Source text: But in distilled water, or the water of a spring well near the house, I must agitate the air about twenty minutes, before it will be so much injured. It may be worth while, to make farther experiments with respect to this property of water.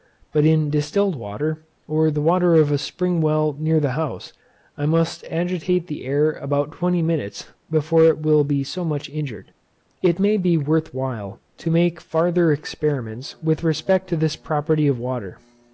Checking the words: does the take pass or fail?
pass